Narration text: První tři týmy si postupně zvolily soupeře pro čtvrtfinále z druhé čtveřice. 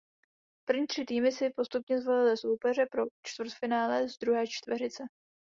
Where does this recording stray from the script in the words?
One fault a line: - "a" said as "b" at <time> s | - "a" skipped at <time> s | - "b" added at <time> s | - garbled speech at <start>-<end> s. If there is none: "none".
none